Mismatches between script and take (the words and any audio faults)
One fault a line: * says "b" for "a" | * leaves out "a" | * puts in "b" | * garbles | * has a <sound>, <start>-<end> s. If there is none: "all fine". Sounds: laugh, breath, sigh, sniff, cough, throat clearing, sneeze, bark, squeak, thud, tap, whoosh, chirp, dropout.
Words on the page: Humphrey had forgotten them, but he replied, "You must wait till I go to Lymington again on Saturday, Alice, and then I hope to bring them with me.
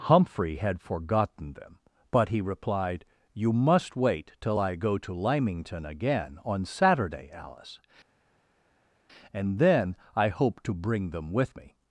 all fine